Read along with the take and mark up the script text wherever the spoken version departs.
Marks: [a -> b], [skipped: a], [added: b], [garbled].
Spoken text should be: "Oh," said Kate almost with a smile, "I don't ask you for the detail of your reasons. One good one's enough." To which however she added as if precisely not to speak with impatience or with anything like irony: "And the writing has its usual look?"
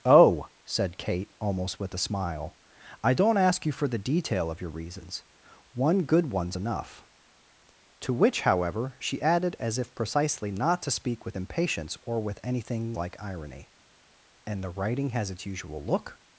"Oh," said Kate almost with a smile, "I don't ask you for the detail of your reasons. One good one's enough." To which however she added as if precisely not to speak with impatience or with anything like irony: "And the writing has its usual look?"